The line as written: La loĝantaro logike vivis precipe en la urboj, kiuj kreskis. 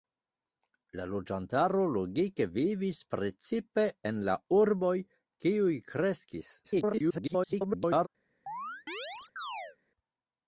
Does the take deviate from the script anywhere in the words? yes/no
yes